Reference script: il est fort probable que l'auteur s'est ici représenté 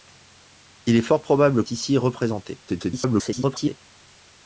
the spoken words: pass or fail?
fail